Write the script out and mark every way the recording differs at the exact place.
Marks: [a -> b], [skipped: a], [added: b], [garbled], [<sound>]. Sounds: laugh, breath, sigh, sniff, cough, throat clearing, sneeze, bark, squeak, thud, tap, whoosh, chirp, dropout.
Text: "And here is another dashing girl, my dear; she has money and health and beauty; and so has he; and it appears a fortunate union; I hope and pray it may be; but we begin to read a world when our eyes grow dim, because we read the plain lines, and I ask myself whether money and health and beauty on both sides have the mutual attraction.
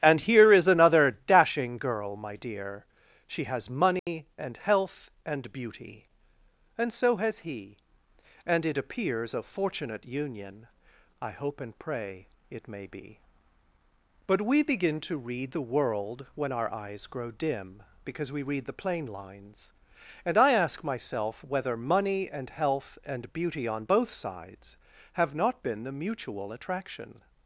"And here is another dashing girl, my dear; she has money [dropout] and health and beauty; and so has he; and it appears a fortunate union; I hope and pray it may be; but we begin to read [a -> the] world when our eyes grow dim, because we read the plain lines, and I ask myself whether money and health and beauty on both sides have [added: not been] the mutual attraction.